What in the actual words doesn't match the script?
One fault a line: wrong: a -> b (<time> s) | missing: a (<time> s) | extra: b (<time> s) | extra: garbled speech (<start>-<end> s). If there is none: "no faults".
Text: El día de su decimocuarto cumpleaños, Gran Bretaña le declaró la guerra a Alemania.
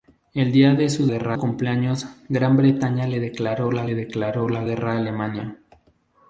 wrong: decimocuarto -> guerra (1.1 s)
extra: le declaró la (3.8 s)